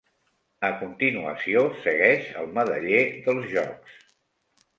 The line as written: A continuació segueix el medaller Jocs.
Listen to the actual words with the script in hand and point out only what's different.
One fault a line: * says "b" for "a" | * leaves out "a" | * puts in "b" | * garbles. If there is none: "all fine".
* puts in "dels"